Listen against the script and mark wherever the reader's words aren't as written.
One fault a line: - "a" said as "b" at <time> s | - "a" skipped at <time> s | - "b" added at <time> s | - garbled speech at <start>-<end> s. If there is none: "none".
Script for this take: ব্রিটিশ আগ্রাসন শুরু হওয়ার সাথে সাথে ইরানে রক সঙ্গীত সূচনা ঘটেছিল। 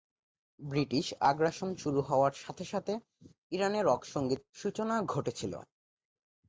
none